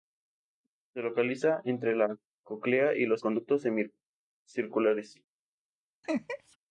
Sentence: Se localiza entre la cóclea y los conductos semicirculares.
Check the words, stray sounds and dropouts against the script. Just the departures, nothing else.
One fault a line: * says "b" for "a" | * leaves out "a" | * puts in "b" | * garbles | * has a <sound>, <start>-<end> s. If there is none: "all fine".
* has a laugh, 6.0-6.6 s